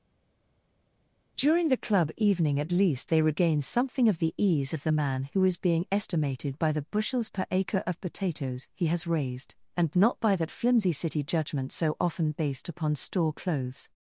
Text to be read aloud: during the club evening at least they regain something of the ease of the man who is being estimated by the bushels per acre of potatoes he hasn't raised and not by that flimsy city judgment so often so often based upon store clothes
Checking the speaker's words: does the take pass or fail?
fail